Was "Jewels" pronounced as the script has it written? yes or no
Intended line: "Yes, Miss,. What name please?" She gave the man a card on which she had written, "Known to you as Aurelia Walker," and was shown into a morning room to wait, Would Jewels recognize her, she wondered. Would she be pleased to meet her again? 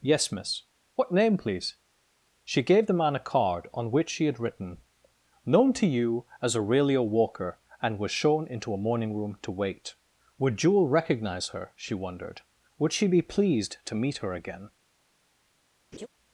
no